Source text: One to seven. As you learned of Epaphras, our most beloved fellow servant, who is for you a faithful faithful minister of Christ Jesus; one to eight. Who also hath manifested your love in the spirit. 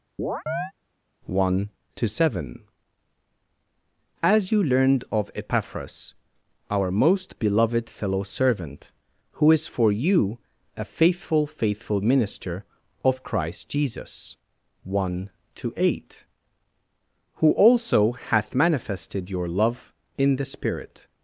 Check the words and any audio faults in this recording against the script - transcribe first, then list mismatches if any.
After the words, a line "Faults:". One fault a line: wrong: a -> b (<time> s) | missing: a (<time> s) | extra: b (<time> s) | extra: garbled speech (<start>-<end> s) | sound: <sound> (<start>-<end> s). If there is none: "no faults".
One to seven. As you learned of Epaphras, our most beloved fellow servant, who is for you a faithful faithful minister of Christ Jesus; one to eight. Who also hath manifested your love in the spirit.
Faults:
sound: chirp (0.2-0.7 s)